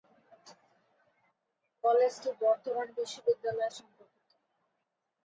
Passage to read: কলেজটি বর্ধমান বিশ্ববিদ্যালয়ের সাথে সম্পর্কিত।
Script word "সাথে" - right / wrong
wrong